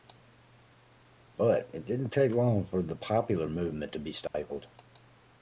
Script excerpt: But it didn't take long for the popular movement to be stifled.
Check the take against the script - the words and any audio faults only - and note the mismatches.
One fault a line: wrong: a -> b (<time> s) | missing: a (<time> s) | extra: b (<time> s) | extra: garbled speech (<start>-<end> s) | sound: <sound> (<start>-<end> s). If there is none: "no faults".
sound: dropout (4.3-4.3 s)